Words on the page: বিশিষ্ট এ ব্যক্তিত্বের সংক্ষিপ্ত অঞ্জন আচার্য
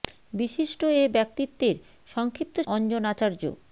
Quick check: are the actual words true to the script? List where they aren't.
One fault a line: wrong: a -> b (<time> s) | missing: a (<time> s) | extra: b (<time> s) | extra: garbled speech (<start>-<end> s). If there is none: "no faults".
no faults